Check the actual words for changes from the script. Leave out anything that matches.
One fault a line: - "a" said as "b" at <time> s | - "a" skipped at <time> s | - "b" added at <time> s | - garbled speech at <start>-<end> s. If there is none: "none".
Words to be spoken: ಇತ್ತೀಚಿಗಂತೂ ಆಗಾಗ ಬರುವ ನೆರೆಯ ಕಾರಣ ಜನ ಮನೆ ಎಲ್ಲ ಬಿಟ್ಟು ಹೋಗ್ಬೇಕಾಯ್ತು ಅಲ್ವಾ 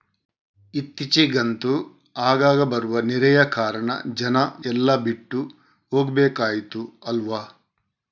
- "ಮನೆ" skipped at 4.4 s